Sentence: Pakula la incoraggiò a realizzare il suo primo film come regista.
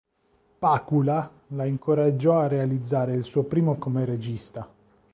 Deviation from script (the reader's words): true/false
true